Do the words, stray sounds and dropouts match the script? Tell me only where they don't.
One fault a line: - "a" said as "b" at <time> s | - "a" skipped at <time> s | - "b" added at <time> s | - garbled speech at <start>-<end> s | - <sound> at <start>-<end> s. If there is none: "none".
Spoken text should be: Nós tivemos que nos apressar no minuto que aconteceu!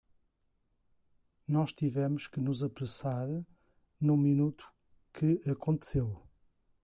none